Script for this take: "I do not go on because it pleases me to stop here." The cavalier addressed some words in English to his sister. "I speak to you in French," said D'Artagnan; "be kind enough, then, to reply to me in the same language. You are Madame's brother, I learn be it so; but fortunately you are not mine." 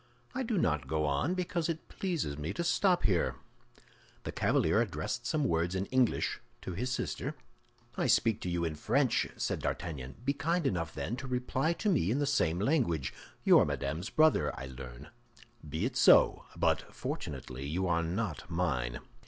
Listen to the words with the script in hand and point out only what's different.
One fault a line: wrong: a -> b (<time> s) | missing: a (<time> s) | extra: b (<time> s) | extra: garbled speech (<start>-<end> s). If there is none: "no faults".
no faults